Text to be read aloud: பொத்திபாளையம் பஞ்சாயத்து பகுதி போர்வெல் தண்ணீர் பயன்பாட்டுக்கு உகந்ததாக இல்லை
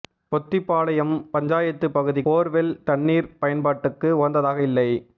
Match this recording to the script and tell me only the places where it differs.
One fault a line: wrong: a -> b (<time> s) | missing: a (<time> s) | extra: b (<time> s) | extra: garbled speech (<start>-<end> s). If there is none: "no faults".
no faults